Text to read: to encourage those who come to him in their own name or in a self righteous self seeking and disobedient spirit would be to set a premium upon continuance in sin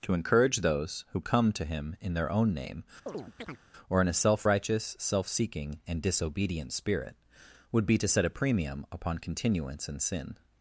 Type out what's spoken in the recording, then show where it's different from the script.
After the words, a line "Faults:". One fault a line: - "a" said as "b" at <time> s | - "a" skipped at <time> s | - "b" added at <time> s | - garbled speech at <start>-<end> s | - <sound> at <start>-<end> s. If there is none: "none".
to encourage those who come to him in their own name or in a self righteous self seeking and disobedient spirit would be to set a premium upon continuance in sin
Faults:
- chirp at 3.1-3.6 s